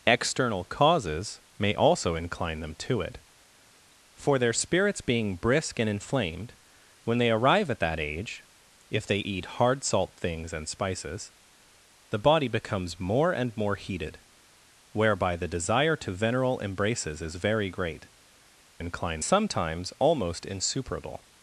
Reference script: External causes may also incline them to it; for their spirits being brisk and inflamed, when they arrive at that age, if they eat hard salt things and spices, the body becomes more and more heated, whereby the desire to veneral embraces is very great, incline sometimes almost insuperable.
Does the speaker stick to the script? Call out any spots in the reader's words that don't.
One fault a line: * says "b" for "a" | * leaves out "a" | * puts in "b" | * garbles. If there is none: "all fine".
all fine